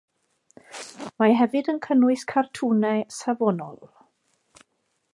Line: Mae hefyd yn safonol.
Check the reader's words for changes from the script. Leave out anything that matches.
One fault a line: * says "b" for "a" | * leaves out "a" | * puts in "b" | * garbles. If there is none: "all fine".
* puts in "cynnwys cartwnau"